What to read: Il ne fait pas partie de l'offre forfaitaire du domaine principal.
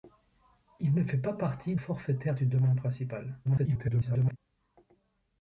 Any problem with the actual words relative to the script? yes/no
yes